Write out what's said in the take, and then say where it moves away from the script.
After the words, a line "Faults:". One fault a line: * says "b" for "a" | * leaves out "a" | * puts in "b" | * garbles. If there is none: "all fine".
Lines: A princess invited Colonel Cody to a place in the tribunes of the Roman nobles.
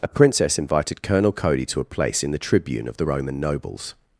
A princess invited Colonel Cody to a place in the tribune of the Roman nobles.
Faults:
* says "tribune" for "tribunes"